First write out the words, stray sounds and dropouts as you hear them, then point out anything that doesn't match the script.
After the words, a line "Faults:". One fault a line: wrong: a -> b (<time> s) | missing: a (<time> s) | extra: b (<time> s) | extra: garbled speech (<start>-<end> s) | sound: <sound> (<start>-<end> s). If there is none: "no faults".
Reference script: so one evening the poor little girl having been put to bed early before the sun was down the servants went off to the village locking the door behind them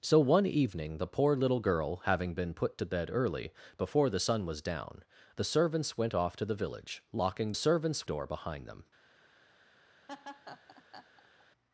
so one evening the poor little girl having been put to bed early before the sun was down the servants went off to the village locking servants door behind them
Faults:
wrong: the -> servants (7.5 s)
sound: laugh (10.1-11.4 s)